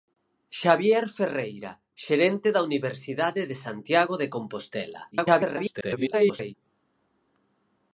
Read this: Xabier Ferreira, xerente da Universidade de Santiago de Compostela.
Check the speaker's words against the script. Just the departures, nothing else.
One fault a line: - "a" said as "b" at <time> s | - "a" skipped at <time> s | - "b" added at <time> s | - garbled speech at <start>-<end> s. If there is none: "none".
- garbled speech at 5.1-6.5 s